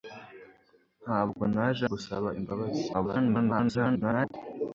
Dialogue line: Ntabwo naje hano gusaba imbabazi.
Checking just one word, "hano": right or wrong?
wrong